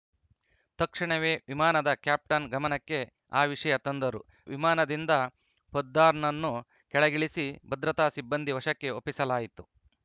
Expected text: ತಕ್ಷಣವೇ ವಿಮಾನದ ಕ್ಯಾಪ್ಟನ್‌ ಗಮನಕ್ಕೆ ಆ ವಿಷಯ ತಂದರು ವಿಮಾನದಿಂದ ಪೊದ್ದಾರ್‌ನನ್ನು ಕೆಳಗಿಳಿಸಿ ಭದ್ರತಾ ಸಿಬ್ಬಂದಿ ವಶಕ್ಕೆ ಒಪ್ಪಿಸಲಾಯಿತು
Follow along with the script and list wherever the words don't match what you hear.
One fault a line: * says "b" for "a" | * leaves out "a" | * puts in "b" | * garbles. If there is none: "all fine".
all fine